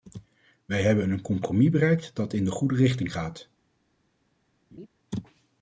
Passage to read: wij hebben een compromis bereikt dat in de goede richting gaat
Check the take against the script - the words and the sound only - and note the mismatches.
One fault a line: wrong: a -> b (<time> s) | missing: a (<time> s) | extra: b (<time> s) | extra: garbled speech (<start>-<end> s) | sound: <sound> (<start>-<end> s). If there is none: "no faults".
sound: laugh (4.7-4.9 s)